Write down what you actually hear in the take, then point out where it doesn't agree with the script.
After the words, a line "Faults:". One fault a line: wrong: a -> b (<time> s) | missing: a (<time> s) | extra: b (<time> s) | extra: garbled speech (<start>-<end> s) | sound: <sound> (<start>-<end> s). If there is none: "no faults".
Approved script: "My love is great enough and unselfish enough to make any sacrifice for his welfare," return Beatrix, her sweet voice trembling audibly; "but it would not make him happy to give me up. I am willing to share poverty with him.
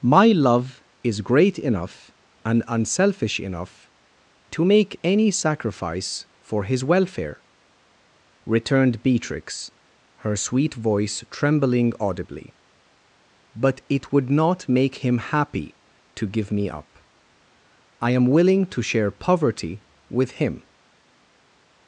"My love is great enough and unselfish enough to make any sacrifice for his welfare," returned Beatrix, her sweet voice trembling audibly; "but it would not make him happy to give me up. I am willing to share poverty with him.
Faults:
wrong: return -> returned (8.4 s)